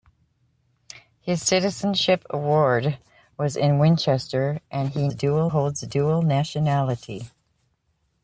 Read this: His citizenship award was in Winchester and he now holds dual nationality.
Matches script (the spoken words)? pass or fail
fail